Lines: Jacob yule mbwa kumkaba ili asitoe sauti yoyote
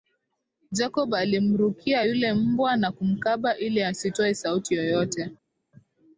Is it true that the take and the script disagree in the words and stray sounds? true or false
true